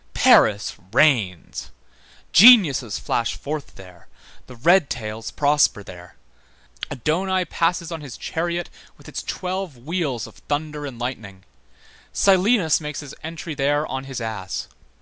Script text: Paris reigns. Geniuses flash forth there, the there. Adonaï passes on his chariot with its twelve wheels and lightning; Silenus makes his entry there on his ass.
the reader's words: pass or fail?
fail